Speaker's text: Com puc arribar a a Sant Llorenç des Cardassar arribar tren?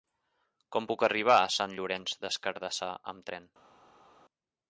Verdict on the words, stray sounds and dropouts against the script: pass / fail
fail